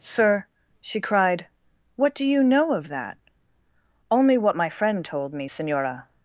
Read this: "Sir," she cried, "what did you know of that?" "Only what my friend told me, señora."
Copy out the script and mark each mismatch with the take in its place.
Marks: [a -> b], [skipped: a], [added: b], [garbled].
"Sir," she cried, "what [did -> do] you know of that?" "Only what my friend told me, señora."